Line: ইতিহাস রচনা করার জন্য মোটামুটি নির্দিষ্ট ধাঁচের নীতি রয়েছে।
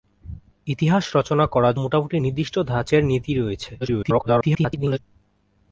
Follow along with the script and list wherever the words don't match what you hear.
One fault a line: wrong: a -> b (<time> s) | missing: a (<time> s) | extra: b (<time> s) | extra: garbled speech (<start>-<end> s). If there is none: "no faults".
missing: জন্য (1.8 s)
extra: garbled speech (3.8-5.0 s)